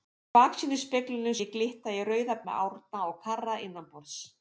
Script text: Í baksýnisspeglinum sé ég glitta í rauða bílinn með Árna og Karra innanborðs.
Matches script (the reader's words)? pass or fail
fail